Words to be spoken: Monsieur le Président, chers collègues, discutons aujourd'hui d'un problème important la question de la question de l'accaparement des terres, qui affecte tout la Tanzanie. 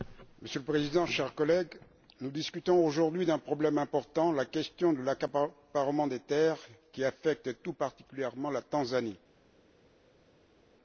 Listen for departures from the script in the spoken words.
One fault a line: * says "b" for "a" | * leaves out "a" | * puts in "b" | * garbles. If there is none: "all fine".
* puts in "nous"
* leaves out "la question de"
* puts in "particulièrement"